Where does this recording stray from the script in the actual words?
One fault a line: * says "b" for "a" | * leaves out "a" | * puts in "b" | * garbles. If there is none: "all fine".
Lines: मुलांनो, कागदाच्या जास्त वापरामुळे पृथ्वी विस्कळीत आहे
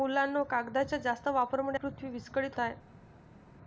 all fine